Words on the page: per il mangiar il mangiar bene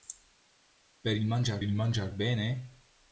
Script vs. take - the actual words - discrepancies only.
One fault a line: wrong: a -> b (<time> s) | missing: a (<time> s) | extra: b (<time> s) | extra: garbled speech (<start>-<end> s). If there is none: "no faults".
no faults